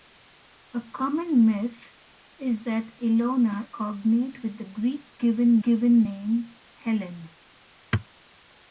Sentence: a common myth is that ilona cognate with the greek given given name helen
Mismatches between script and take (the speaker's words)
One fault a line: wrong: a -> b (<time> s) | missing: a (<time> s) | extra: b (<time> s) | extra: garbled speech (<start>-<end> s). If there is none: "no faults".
no faults